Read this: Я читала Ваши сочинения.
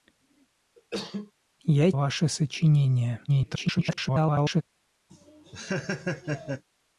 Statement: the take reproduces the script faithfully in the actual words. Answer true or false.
false